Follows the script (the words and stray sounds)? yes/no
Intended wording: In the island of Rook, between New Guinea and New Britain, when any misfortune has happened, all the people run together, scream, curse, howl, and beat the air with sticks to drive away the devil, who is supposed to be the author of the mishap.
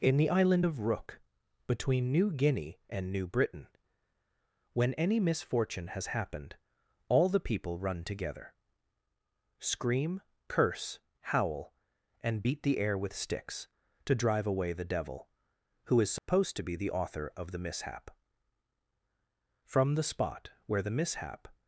no